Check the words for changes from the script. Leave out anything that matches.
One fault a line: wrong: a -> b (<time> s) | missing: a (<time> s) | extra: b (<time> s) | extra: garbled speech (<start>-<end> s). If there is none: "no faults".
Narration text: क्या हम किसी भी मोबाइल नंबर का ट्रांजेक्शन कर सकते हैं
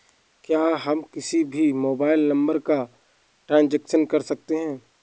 no faults